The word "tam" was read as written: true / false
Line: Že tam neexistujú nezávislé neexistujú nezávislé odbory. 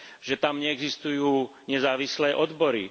true